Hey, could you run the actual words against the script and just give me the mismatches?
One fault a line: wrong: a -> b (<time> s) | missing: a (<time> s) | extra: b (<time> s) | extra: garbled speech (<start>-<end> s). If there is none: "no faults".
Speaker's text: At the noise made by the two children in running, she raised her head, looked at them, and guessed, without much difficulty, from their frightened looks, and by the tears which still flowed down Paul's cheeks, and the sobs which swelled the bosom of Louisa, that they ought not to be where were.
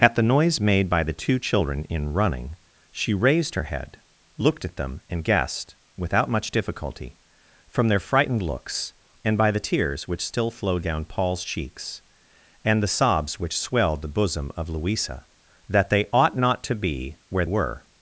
no faults